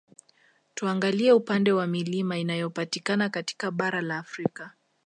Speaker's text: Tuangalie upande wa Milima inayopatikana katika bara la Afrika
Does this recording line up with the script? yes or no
yes